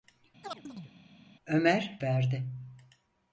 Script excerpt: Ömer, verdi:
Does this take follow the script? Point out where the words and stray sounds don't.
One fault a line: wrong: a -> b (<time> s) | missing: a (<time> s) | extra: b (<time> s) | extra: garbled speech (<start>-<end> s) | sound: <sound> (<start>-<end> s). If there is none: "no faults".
sound: chirp (0.4-0.9 s)